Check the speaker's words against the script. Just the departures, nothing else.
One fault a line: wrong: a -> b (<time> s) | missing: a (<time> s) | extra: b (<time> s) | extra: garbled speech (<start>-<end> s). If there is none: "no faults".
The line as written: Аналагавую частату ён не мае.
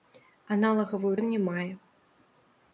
missing: частату (1.1 s)